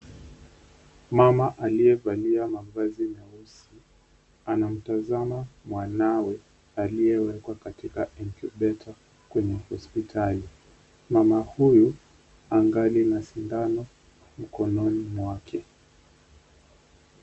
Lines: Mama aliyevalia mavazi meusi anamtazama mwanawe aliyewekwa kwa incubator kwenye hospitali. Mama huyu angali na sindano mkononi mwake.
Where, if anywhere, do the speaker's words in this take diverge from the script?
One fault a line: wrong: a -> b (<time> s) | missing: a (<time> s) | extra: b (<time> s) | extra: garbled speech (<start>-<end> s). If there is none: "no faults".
wrong: kwa -> katika (7.5 s)